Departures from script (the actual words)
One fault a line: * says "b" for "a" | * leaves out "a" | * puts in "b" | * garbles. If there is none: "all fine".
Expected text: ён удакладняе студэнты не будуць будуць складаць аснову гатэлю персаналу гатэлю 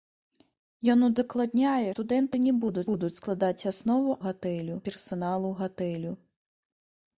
all fine